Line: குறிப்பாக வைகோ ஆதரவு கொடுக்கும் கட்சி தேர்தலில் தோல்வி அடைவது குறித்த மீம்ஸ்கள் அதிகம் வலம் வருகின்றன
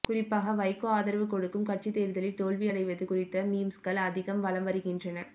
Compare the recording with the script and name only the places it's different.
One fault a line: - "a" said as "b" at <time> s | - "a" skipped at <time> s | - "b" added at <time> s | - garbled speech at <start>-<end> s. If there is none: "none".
none